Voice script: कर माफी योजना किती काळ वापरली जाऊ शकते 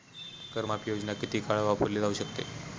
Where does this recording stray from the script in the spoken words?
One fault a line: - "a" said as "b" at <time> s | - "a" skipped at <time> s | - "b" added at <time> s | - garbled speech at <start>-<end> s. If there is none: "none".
none